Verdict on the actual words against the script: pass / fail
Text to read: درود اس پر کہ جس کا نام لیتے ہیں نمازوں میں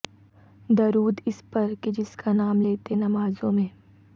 fail